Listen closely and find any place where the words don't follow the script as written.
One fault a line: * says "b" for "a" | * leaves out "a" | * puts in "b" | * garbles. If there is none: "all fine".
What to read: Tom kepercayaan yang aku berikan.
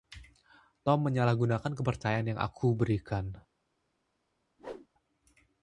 * puts in "menyalahgunakan"